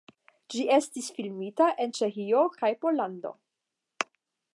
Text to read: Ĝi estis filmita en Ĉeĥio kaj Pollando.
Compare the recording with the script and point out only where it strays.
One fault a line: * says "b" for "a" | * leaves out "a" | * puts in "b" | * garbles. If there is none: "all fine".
all fine